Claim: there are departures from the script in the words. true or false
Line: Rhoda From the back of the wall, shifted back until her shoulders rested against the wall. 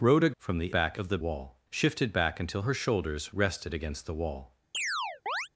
false